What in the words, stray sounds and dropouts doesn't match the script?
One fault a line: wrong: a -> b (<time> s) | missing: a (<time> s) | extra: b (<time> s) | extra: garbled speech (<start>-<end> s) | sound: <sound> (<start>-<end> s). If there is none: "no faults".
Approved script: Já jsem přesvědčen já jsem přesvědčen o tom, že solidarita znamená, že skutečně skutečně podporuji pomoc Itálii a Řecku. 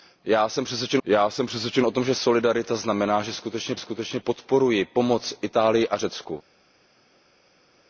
no faults